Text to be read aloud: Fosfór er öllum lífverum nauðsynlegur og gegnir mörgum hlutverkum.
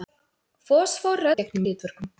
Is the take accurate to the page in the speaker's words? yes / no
no